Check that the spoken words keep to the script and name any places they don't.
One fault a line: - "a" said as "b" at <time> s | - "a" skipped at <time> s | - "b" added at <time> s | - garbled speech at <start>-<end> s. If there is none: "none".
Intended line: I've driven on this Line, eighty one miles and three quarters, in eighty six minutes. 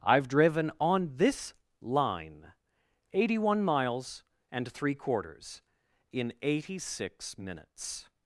none